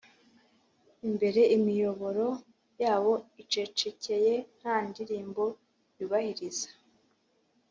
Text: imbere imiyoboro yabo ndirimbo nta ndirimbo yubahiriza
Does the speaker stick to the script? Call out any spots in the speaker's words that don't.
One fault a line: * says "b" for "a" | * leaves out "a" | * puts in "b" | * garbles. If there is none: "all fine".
* says "icecekeye" for "ndirimbo"